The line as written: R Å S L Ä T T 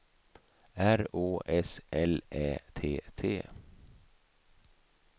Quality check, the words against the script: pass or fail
pass